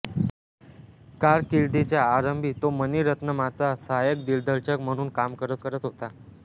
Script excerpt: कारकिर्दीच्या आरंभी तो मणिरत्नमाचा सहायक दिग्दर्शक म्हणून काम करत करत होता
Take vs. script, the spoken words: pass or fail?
pass